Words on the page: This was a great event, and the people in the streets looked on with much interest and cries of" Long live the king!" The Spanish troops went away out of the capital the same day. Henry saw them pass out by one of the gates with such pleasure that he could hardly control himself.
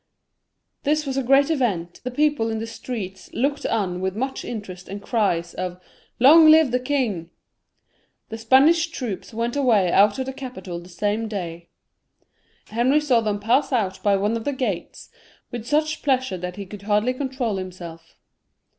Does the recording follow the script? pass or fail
fail